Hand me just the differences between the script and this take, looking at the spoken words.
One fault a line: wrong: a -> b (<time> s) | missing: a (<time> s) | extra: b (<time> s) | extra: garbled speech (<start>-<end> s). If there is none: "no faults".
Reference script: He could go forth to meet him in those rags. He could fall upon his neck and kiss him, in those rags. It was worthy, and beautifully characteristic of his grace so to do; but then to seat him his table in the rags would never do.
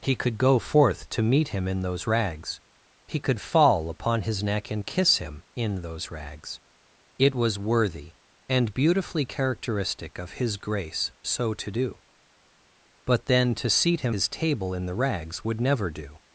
no faults